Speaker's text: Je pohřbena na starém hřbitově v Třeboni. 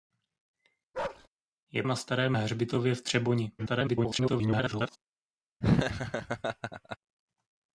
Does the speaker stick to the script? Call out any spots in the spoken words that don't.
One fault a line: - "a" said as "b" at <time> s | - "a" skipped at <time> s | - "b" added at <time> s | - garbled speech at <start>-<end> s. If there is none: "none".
- "pohřbena" skipped at 1.8 s
- garbled speech at 3.6-5.0 s